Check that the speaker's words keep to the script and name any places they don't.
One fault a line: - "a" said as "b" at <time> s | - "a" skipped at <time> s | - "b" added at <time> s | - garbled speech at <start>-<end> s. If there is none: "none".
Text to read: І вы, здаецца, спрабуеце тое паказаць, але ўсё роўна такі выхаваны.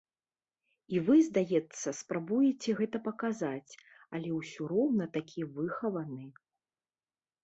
- "тое" said as "гэта" at 2.8 s